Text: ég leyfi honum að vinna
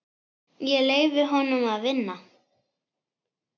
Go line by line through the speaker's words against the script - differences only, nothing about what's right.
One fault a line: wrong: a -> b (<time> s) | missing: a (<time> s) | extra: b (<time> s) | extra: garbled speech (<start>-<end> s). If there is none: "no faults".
no faults